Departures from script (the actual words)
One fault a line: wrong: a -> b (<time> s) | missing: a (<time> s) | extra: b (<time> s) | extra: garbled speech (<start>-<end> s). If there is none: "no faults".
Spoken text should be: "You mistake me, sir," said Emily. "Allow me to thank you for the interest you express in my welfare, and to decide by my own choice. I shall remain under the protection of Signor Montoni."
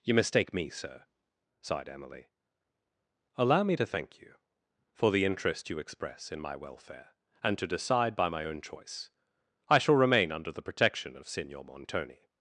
wrong: said -> sighed (1.6 s)